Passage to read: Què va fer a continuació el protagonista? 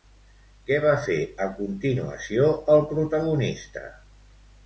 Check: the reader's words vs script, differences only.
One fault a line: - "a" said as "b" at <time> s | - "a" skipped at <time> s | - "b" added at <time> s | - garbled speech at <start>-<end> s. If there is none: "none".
none